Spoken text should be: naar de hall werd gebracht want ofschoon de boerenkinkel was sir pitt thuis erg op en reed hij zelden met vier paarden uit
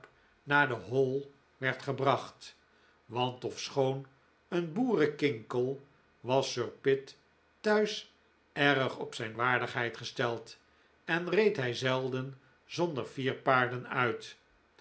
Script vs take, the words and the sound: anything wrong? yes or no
yes